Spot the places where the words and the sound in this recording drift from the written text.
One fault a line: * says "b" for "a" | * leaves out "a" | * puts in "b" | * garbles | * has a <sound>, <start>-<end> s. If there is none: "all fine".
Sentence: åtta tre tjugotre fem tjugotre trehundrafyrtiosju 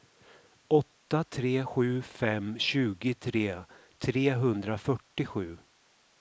* says "sju" for "tjugotre"